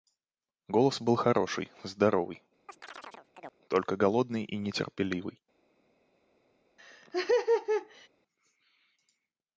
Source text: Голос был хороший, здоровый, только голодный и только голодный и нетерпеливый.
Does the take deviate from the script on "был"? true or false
false